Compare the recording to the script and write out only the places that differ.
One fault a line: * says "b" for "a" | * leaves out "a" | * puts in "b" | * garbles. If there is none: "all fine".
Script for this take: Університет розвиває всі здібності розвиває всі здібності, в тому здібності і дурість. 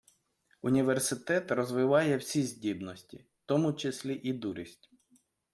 * leaves out "розвиває всі здібності"
* says "числі" for "здібності"